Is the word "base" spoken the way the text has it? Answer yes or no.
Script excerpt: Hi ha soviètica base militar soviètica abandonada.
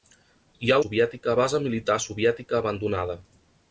yes